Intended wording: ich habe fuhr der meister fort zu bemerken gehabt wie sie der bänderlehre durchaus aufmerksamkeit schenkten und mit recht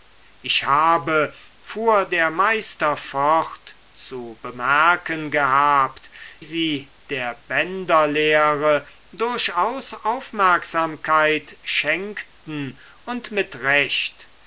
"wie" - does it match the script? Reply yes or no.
no